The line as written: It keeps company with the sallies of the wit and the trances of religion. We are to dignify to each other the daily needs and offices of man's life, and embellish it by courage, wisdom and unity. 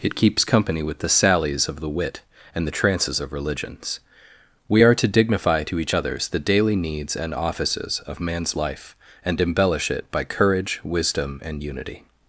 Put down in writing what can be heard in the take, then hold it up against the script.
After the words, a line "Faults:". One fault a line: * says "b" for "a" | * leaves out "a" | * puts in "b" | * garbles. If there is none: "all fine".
It keeps company with the sallies of the wit and the trances of religions. We are to dignify to each others the daily needs and offices of man's life, and embellish it by courage, wisdom and unity.
Faults:
* says "religions" for "religion"
* says "others" for "other"